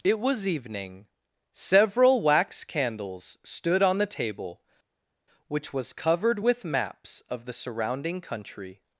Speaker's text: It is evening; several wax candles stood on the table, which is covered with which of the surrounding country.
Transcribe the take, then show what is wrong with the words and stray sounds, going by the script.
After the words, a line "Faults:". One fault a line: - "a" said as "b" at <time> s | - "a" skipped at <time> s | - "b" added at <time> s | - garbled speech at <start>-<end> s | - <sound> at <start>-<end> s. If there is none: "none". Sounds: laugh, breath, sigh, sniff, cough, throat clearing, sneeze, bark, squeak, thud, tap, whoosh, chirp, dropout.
It was evening; several wax candles stood on the table, which was covered with maps of the surrounding country.
Faults:
- "is" said as "was" at 0.2 s
- "is" said as "was" at 5.7 s
- "which" said as "maps" at 6.6 s